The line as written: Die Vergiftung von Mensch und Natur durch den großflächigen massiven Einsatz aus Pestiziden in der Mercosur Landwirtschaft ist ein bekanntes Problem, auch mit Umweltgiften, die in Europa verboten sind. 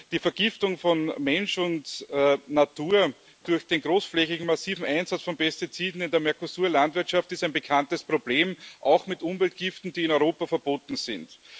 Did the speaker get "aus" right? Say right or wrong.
wrong